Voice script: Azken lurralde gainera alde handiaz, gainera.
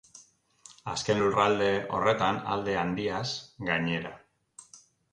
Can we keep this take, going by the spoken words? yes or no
no